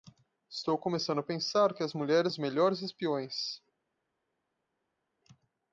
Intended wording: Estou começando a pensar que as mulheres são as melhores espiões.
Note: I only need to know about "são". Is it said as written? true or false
false